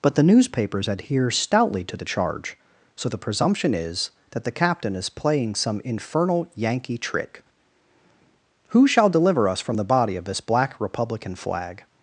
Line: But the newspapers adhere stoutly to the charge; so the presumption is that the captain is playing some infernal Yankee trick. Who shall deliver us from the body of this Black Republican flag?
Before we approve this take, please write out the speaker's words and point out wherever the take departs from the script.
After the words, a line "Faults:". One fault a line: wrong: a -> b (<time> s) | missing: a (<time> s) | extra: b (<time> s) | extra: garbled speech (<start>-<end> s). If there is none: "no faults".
But the newspapers adhere stoutly to the charge; so the presumption is that the captain is playing some infernal Yankee trick. Who shall deliver us from the body of this Black Republican flag?
Faults:
no faults